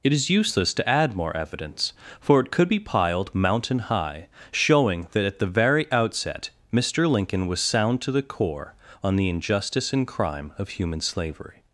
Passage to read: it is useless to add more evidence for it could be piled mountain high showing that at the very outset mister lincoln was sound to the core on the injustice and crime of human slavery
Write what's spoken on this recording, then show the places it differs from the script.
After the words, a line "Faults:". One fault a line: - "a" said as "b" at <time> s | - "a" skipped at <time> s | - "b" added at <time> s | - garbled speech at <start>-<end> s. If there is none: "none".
it is useless to add more evidence for it could be piled mountain high showing that at the very outset mister lincoln was sound to the core on the injustice and crime of human slavery
Faults:
none